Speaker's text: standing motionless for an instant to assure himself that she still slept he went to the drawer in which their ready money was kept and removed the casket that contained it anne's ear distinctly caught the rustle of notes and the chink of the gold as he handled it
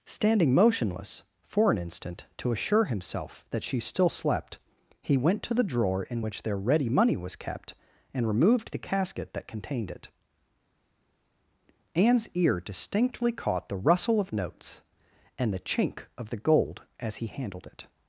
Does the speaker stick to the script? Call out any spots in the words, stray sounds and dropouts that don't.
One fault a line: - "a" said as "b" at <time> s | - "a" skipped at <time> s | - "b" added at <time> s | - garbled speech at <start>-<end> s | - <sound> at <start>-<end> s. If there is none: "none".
none